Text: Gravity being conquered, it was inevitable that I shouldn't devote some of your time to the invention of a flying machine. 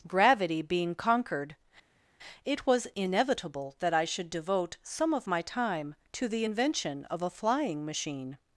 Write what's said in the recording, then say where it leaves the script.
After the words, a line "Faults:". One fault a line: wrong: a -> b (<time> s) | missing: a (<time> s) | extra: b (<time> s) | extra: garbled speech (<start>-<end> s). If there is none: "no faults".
Gravity being conquered, it was inevitable that I should devote some of my time to the invention of a flying machine.
Faults:
wrong: shouldn't -> should (4.1 s)
wrong: your -> my (5.3 s)